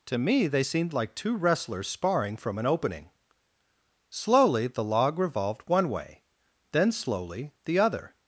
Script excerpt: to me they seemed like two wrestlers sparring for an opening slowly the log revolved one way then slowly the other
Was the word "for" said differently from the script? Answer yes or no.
yes